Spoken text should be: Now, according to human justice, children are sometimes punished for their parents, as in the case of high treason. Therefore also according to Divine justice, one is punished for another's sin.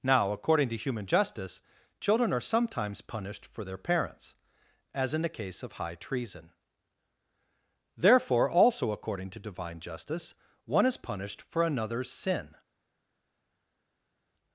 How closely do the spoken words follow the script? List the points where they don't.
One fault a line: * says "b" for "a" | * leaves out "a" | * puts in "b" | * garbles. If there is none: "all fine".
all fine